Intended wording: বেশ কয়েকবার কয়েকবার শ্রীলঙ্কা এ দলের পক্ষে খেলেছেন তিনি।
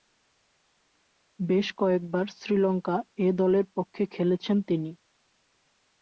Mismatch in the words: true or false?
true